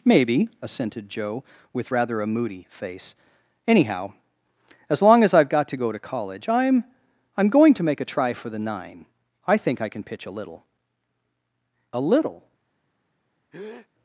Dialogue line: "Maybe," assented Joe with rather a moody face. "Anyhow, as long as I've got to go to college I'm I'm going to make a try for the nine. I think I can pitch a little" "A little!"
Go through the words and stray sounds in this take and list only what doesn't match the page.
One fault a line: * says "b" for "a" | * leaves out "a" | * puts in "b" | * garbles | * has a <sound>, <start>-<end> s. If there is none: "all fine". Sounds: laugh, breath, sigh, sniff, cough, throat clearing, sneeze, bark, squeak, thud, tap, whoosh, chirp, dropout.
* has a breath, 13.5-13.9 s